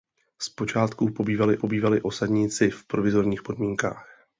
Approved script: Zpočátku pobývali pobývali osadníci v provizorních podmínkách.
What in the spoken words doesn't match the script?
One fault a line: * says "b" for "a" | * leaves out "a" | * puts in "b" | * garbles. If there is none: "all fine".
all fine